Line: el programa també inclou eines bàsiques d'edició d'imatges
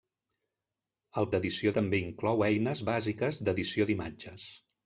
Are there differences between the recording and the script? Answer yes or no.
yes